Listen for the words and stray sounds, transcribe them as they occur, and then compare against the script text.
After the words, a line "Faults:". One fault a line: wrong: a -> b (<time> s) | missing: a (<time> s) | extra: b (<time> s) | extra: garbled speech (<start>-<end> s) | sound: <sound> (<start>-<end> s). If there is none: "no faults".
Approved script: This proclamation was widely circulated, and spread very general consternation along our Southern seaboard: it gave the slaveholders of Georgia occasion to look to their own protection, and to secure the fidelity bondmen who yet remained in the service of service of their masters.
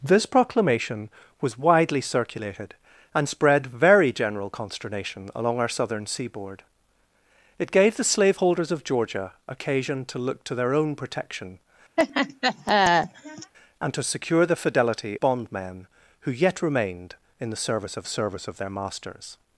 This proclamation was widely circulated, and spread very general consternation along our Southern seaboard: it gave the slaveholders of Georgia occasion to look to their own protection, and to secure the fidelity bondmen who yet remained in the service of service of their masters.
Faults:
sound: laugh (12.0-13.5 s)